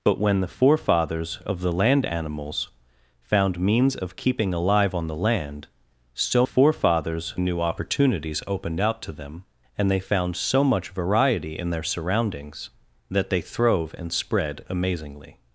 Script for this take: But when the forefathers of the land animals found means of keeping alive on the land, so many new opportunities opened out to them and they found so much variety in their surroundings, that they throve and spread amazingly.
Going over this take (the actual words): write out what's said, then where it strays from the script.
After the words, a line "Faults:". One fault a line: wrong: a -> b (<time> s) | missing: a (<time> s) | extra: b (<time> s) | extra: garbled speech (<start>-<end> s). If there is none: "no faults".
But when the forefathers of the land animals found means of keeping alive on the land, so forefathers new opportunities opened out to them and they found so much variety in their surroundings, that they throve and spread amazingly.
Faults:
wrong: many -> forefathers (6.4 s)